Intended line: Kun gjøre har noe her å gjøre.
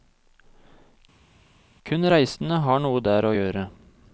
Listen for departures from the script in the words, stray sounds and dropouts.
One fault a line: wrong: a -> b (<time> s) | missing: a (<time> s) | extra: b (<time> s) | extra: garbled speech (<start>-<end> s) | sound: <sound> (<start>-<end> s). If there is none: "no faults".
wrong: gjøre -> reisende (2.1 s)
wrong: her -> der (3.0 s)